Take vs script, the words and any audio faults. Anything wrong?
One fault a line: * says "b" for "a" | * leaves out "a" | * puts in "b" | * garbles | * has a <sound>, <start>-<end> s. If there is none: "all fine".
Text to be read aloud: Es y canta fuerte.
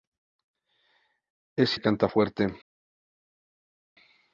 all fine